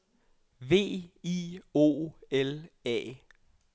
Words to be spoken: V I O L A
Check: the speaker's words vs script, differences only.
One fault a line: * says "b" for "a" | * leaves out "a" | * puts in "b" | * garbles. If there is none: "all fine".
all fine